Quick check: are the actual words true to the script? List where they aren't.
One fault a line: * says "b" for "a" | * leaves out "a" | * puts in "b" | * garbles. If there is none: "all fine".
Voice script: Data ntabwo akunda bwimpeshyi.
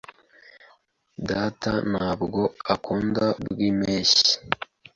all fine